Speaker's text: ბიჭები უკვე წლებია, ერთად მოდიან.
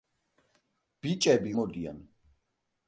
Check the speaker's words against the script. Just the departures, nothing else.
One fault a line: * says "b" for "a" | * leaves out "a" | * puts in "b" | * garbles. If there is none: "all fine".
* leaves out "უკვე წლებია ერთად"